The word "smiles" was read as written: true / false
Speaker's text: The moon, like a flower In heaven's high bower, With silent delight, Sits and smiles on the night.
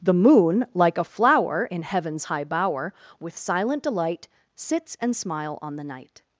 false